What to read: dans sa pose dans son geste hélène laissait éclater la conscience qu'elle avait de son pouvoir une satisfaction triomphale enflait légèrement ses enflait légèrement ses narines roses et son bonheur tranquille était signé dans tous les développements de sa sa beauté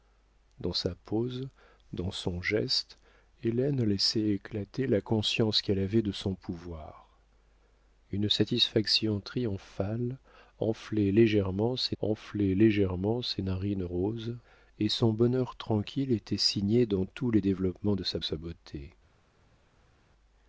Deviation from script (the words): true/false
false